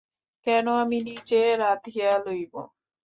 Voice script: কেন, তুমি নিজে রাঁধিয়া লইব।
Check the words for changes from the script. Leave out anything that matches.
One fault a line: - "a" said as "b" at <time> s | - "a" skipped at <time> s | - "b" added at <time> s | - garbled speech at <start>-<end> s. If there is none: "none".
- "তুমি" said as "আমি" at 0.8 s